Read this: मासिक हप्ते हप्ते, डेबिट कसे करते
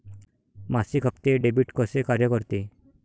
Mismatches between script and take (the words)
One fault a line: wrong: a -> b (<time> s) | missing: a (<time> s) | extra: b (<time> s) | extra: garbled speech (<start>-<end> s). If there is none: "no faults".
missing: हप्ते (1.4 s)
extra: कार्य (2.0 s)